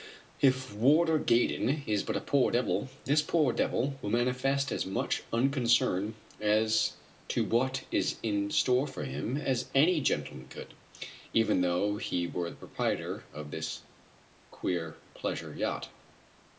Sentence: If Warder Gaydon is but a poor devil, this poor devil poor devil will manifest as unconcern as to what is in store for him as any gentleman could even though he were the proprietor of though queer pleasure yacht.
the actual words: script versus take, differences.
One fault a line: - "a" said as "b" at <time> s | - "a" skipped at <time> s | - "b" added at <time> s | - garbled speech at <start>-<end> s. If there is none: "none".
- "poor devil" skipped at 4.0 s
- "much" added at 4.9 s
- "though" said as "this" at 13.5 s